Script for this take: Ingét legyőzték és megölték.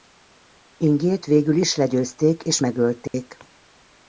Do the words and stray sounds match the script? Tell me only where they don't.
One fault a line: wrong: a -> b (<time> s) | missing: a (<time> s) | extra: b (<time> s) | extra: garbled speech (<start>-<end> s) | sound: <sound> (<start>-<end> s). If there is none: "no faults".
extra: végül is (1.2 s)
sound: dropout (3.1-3.1 s)